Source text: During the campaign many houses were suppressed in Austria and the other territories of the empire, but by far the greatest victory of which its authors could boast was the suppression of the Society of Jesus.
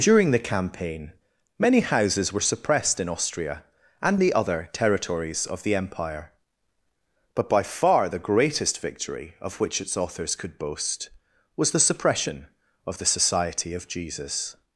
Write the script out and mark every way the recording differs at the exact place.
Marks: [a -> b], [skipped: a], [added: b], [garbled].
During the campaign many houses were suppressed in Austria and the other territories of the empire, but by far the greatest victory of which its authors could boast was the suppression of the Society of Jesus.